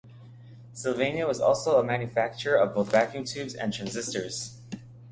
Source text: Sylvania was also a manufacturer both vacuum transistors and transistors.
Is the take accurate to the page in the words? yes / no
no